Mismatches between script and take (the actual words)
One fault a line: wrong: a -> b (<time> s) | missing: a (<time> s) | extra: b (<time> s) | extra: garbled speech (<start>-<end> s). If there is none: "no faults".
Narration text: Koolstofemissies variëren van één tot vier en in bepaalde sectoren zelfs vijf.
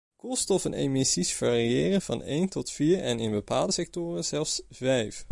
no faults